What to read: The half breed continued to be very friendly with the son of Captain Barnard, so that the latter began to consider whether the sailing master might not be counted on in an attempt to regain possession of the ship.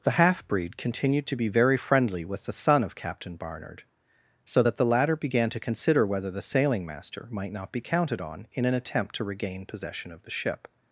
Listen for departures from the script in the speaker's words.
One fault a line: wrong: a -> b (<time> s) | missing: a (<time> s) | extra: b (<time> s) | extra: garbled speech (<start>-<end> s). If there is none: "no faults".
no faults